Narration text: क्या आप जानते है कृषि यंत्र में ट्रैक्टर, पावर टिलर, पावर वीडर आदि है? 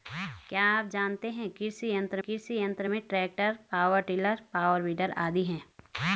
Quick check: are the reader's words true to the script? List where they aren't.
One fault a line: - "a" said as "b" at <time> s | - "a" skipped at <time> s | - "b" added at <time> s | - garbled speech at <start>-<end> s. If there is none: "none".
- "कृषि यंत्र" added at 2.2 s